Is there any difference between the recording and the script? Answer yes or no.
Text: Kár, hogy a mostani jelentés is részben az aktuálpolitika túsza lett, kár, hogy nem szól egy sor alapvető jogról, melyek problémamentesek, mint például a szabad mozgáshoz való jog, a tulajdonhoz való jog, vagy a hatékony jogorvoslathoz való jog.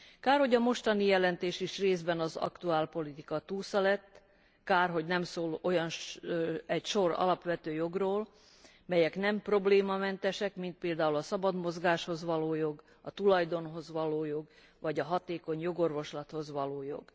yes